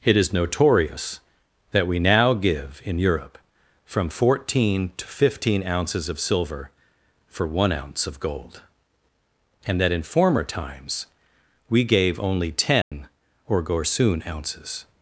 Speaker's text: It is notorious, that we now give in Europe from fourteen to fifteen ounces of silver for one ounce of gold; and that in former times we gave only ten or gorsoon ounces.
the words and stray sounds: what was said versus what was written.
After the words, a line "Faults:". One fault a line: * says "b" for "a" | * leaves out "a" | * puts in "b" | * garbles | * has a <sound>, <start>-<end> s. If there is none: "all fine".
It is notorious, that we now give in Europe from fourteen to fifteen ounces of silver for one ounce of gold; and that in former times we gave only ten or gorsoon ounces.
Faults:
* has a dropout, 12.8-12.9 s